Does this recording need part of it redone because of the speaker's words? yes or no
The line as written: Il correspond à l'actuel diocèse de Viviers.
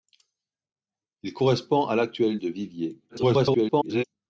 yes